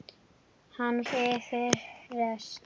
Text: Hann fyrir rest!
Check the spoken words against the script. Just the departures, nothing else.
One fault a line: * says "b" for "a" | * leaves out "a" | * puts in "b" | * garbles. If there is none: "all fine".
all fine